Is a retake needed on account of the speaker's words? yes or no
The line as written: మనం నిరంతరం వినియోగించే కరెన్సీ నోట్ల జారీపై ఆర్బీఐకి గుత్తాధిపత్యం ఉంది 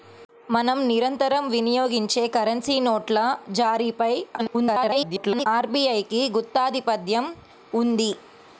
yes